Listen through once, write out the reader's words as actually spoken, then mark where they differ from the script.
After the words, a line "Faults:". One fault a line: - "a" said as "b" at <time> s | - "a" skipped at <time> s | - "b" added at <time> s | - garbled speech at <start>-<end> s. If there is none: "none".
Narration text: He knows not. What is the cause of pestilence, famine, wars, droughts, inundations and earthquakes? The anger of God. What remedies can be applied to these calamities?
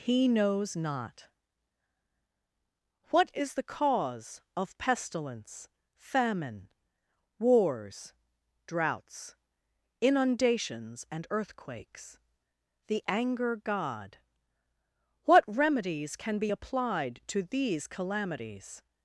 He knows not. What is the cause of pestilence, famine, wars, droughts, inundations and earthquakes? The anger God. What remedies can be applied to these calamities?
Faults:
- "of" skipped at 13.6 s